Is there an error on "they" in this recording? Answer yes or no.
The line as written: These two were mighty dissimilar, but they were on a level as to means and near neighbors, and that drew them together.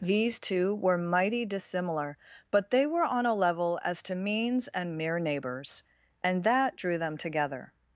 no